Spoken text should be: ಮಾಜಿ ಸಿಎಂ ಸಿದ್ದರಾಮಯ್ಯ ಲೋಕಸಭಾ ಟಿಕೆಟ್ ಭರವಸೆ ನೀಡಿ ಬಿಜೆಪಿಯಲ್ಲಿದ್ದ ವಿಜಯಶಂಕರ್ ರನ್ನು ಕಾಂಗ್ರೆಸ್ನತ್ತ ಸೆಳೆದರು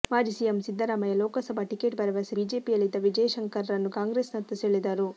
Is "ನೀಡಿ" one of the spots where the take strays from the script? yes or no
yes